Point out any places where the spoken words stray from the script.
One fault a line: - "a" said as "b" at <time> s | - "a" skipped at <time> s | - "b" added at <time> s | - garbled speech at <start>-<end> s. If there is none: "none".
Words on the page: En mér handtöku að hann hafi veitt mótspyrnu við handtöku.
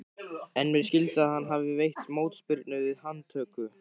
- "handtöku" said as "skilst" at 0.8 s